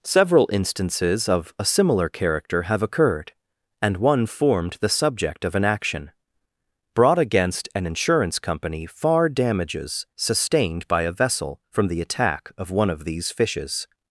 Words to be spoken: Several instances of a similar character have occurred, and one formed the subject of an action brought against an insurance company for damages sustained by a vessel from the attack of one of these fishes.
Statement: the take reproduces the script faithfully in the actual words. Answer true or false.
false